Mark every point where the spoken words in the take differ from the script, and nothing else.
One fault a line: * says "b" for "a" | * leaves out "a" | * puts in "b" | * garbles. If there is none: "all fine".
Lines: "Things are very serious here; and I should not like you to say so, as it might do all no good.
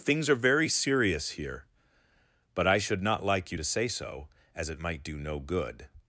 * says "but" for "and"
* leaves out "all"